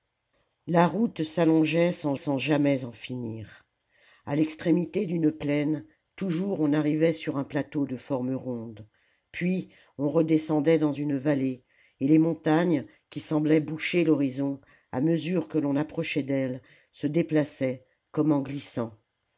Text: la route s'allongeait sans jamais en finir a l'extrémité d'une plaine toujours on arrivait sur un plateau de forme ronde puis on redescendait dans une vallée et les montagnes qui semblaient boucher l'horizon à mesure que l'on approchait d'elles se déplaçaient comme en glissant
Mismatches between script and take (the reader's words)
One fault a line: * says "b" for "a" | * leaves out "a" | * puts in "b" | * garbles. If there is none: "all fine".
* puts in "sans"